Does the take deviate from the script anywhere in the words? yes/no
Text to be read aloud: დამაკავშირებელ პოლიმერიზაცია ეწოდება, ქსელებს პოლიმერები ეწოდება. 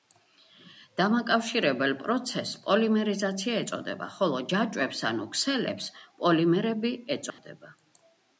yes